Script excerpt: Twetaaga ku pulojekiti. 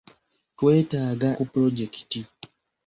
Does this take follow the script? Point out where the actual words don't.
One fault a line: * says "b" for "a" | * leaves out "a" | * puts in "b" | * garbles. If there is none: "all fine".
all fine